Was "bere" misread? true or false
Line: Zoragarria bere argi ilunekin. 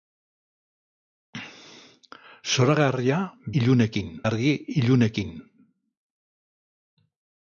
true